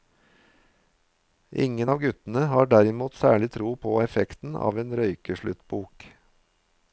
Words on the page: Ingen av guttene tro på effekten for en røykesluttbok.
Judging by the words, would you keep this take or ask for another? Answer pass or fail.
fail